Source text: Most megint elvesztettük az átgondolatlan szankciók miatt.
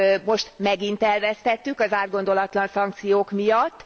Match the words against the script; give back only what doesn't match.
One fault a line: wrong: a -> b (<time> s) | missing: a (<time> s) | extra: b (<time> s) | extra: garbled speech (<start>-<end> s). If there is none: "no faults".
no faults